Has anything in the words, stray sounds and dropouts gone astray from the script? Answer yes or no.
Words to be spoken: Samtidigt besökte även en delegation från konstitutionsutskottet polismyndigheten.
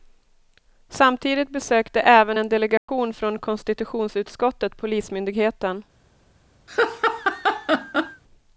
yes